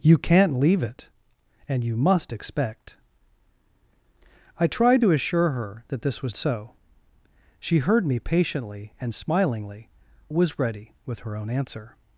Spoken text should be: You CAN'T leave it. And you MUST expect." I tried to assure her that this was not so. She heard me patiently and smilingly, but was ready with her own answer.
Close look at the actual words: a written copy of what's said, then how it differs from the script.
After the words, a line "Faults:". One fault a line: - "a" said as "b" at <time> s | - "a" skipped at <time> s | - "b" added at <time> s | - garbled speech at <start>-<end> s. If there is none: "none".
You CAN'T leave it. And you MUST expect." I tried to assure her that this was so. She heard me patiently and smilingly, was ready with her own answer.
Faults:
- "not" skipped at 6.4 s
- "but" skipped at 9.9 s